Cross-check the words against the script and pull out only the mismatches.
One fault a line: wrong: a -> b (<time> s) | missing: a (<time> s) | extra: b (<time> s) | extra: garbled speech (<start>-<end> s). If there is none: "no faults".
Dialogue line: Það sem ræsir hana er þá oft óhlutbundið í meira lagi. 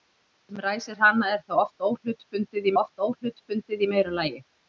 extra: oft óhlutbundið (2.8 s)